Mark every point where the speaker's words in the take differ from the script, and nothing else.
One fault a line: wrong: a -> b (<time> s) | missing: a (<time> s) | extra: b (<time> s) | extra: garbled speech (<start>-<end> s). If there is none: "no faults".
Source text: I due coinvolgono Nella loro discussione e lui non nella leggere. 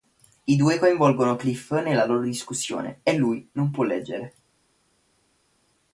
extra: Cliff (1.4 s)
wrong: nella -> può (3.7 s)